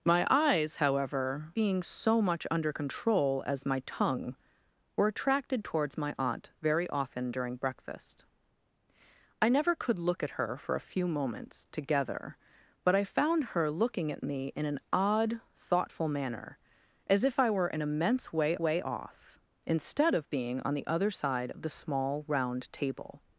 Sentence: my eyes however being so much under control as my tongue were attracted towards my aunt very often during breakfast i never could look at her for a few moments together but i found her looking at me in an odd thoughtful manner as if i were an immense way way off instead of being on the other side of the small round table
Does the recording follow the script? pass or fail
pass